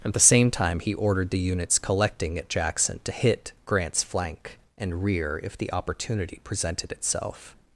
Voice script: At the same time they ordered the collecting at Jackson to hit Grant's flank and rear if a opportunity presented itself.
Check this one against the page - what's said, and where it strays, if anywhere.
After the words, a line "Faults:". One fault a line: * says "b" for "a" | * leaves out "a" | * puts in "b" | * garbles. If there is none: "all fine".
At the same time he ordered the units collecting at Jackson to hit Grant's flank and rear if the opportunity presented itself.
Faults:
* says "he" for "they"
* puts in "units"
* says "the" for "a"